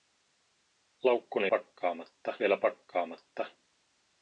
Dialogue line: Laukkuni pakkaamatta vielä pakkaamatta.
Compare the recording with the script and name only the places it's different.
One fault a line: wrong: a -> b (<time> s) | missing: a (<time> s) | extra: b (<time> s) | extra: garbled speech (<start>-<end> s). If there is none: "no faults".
no faults